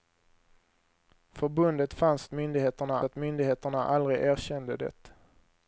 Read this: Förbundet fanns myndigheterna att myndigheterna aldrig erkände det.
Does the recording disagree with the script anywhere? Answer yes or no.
no